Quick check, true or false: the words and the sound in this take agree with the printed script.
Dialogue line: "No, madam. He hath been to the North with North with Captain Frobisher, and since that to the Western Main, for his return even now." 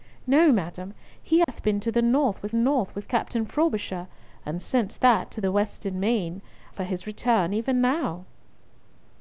false